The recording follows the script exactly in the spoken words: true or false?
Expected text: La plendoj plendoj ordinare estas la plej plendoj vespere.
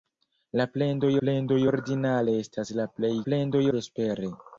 true